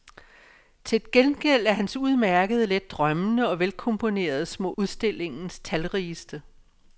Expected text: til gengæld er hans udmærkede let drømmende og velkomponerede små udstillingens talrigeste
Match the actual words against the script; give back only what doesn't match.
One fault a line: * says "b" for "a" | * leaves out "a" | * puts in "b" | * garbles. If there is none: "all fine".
all fine